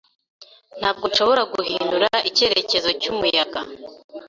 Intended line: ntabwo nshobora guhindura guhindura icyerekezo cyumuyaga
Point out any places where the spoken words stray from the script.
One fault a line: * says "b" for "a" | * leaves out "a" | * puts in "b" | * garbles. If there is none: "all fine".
* leaves out "guhindura"